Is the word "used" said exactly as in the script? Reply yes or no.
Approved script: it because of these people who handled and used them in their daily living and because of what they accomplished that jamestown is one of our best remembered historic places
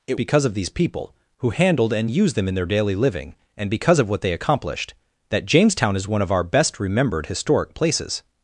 yes